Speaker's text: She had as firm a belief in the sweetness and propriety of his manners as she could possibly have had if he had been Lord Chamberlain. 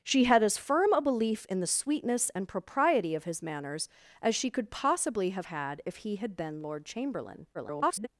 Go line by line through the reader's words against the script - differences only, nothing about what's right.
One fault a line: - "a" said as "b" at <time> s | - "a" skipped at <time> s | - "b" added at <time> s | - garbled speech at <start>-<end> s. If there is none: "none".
- garbled speech at 7.5-8.1 s